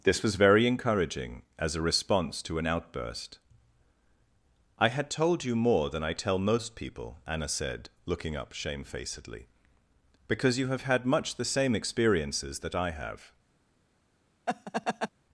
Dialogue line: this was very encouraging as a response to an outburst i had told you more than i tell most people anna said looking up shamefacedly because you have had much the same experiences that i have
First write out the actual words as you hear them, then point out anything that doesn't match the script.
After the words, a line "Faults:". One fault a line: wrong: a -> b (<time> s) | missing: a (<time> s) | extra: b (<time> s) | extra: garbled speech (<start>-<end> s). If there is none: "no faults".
this was very encouraging as a response to an outburst i had told you more than i tell most people anna said looking up shamefacedly because you have had much the same experiences that i have
Faults:
no faults